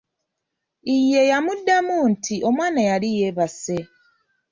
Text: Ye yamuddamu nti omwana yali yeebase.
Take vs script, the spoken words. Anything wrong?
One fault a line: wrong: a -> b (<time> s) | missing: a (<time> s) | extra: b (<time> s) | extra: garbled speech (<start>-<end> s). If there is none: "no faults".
no faults